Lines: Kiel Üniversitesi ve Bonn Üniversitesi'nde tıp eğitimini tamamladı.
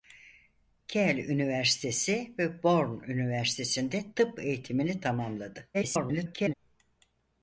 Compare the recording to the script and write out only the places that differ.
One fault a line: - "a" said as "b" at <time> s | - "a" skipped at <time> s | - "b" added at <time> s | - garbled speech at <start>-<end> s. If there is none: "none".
- garbled speech at 5.7-6.5 s